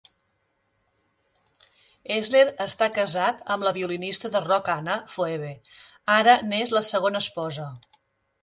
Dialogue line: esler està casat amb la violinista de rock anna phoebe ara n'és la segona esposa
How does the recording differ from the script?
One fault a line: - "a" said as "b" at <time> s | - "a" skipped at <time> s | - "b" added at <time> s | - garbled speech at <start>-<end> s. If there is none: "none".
none